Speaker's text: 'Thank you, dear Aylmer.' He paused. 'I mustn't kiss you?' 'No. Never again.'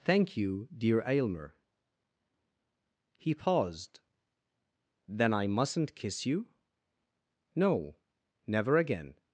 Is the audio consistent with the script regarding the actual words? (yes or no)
no